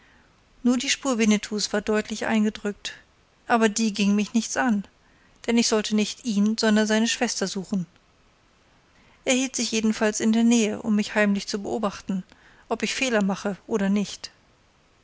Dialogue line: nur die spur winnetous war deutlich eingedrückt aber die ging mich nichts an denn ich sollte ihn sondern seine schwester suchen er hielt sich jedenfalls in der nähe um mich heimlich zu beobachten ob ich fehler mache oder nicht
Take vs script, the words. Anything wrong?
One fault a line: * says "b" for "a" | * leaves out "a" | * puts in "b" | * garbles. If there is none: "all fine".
* puts in "nicht"